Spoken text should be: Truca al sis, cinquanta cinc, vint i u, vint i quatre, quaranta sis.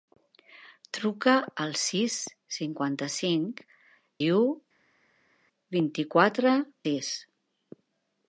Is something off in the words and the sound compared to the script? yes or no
yes